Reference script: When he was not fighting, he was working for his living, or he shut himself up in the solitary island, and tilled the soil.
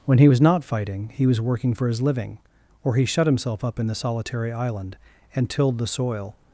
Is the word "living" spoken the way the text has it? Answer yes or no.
yes